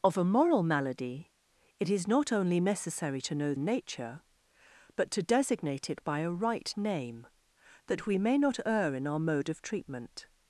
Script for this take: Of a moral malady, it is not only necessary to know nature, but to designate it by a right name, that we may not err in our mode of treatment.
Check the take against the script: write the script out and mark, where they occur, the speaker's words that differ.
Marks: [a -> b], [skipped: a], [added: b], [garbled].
Of a moral malady, it is not only necessary to know nature, but to designate it by a right name, that we may not err in our mode of treatment.